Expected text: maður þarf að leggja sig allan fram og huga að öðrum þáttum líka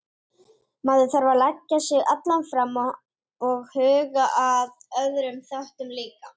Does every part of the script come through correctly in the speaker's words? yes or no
yes